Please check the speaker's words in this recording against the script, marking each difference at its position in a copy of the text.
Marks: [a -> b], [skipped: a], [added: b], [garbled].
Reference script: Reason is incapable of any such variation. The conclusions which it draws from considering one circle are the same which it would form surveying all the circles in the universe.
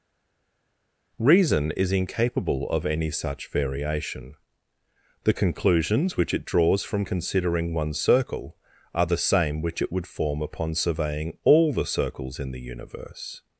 Reason is incapable of any such variation. The conclusions which it draws from considering one circle are the same which it would form [added: upon] surveying all the circles in the universe.